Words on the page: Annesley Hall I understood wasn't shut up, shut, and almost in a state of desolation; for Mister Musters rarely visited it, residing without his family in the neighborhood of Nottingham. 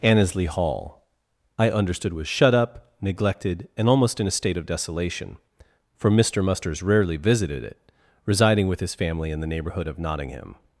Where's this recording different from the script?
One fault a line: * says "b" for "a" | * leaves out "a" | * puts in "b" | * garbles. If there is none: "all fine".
* says "was" for "wasn't"
* says "neglected" for "shut"
* says "with" for "without"